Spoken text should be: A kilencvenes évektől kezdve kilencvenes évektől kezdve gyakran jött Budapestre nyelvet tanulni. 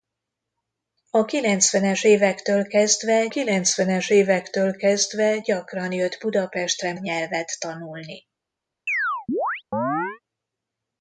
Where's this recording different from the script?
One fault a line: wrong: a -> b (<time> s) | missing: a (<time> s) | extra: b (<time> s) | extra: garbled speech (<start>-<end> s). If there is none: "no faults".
no faults